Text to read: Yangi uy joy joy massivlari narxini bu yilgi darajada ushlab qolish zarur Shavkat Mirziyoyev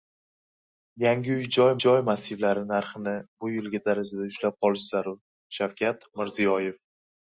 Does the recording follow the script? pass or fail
pass